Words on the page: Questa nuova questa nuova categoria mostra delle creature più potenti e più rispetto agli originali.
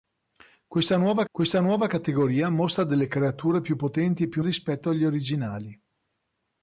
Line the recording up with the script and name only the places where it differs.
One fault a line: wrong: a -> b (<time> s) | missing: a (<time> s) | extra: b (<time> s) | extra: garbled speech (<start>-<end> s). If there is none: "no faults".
no faults